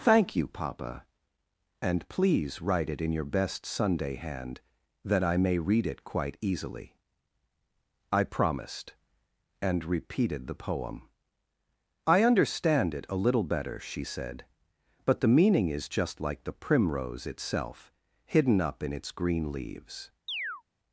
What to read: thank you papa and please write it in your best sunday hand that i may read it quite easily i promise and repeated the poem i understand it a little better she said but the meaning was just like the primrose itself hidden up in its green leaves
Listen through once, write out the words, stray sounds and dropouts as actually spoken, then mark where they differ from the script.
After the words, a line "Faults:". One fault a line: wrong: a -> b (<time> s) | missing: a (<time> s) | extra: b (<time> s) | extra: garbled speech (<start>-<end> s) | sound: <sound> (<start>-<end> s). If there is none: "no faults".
thank you papa and please write it in your best sunday hand that i may read it quite easily i promised and repeated the poem i understand it a little better she said but the meaning is just like the primrose itself hidden up in its green leaves
Faults:
wrong: promise -> promised (8.2 s)
wrong: was -> is (15.7 s)
sound: chirp (20.3-20.6 s)